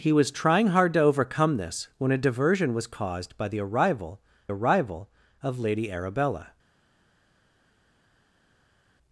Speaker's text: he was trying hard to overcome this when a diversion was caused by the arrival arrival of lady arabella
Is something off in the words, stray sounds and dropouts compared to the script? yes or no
no